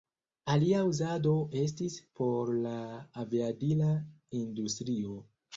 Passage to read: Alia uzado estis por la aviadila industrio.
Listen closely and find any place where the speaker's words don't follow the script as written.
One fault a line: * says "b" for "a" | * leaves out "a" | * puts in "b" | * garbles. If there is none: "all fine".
all fine